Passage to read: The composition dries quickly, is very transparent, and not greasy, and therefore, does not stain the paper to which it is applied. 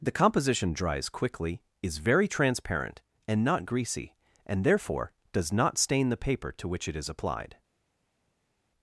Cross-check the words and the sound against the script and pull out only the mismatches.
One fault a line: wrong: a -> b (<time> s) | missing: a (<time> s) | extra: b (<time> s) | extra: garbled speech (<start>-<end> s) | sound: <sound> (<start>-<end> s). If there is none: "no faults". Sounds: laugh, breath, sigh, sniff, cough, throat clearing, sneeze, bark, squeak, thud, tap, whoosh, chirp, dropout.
no faults